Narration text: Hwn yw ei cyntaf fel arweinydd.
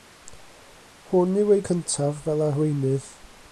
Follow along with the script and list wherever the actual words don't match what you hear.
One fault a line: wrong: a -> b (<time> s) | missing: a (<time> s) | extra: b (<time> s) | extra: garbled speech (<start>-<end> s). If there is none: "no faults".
no faults